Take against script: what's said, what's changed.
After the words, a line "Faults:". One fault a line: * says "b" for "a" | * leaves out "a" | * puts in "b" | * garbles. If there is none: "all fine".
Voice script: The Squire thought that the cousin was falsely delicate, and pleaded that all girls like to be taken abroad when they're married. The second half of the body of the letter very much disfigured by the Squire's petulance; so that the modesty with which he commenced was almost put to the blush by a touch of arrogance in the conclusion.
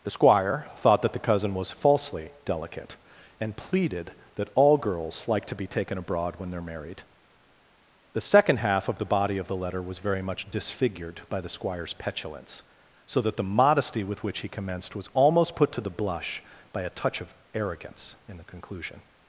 The Squire thought that the cousin was falsely delicate, and pleaded that all girls like to be taken abroad when they're married. The second half of the body of the letter was very much disfigured by the Squire's petulance; so that the modesty with which he commenced was almost put to the blush by a touch of arrogance in the conclusion.
Faults:
* puts in "was"